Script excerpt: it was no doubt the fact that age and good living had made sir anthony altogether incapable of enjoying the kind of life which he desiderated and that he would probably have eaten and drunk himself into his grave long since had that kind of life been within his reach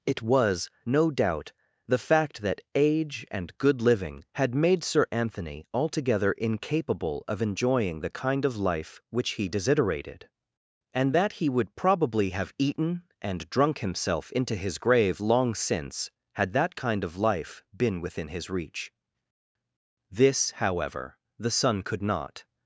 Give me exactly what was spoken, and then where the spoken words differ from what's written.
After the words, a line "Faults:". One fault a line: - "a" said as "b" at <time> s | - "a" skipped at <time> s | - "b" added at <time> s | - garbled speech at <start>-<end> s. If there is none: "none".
it was no doubt the fact that age and good living had made sir anthony altogether incapable of enjoying the kind of life which he desiderated and that he would probably have eaten and drunk himself into his grave long since had that kind of life been within his reach this however the son could not
Faults:
- "this however the son could not" added at 20.1 s